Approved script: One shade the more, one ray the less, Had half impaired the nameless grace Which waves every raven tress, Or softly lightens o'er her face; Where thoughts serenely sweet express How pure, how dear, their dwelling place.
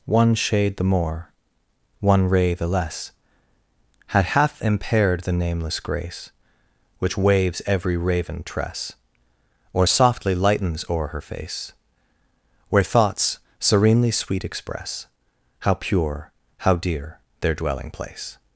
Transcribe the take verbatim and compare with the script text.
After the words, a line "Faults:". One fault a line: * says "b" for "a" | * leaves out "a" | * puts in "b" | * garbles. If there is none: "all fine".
One shade the more, one ray the less, Had half impaired the nameless grace Which waves every raven tress, Or softly lightens o'er her face; Where thoughts serenely sweet express How pure, how dear, their dwelling place.
Faults:
all fine